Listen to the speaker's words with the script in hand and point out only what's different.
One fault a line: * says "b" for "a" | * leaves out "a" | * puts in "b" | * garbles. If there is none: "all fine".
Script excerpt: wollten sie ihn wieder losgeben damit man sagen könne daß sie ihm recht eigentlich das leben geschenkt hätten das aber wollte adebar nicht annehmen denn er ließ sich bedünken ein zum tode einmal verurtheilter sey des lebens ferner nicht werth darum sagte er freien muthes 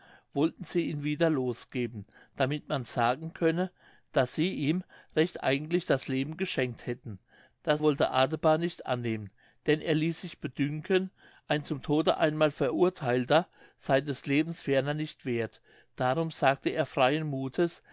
* leaves out "aber"